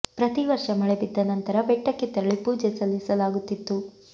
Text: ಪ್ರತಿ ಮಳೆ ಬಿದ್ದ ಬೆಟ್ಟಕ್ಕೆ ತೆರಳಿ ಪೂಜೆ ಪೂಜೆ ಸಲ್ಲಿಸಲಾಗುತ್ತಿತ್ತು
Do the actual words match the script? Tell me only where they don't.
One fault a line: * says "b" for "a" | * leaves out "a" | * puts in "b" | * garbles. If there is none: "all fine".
* puts in "ವರ್ಷ"
* puts in "ನಂತರ"
* leaves out "ಪೂಜೆ"